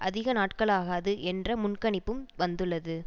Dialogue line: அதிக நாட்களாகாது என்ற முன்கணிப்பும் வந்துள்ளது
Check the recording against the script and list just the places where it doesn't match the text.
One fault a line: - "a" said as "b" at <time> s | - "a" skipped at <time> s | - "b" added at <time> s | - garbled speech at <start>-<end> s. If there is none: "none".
none